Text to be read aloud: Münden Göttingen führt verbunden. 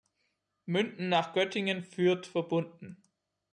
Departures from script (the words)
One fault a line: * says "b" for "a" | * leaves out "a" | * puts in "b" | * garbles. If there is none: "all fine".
* puts in "nach"